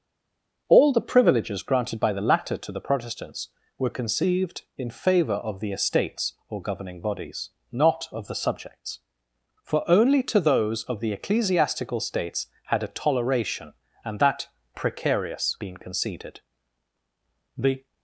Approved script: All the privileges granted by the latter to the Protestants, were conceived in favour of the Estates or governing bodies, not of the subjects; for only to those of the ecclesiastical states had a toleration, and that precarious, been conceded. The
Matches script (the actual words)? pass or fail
pass